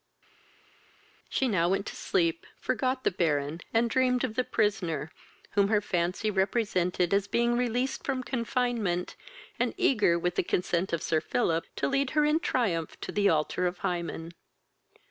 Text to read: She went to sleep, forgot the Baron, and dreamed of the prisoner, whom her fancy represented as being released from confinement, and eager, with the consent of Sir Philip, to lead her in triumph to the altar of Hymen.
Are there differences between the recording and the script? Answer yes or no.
yes